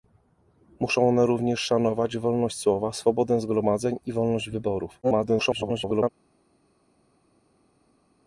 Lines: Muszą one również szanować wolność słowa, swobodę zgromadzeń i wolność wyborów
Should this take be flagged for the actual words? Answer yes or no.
yes